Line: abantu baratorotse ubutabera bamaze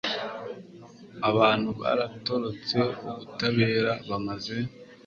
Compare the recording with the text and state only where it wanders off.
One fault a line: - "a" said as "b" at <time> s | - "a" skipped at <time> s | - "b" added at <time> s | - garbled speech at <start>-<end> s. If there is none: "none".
none